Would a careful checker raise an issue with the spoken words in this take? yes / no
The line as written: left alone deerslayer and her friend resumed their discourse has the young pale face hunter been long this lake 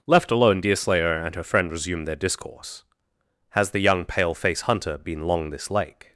no